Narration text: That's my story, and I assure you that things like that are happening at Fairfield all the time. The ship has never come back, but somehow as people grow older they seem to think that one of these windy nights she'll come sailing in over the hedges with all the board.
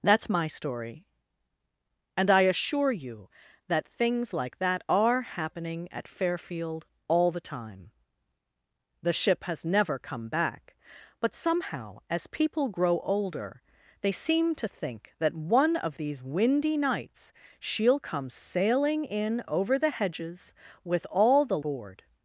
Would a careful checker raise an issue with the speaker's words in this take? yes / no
no